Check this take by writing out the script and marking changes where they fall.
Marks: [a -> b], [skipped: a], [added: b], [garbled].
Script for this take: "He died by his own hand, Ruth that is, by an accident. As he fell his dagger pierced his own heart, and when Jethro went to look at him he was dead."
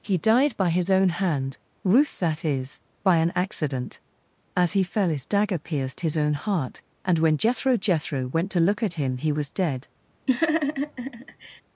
"He died by his own hand, Ruth that is, by an accident. As he fell his dagger pierced his own heart, and when Jethro [added: Jethro] went to look at him he was dead."